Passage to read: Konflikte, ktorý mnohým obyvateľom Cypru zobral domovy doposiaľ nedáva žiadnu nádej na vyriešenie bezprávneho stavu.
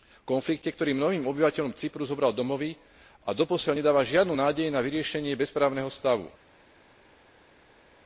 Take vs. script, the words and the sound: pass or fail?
fail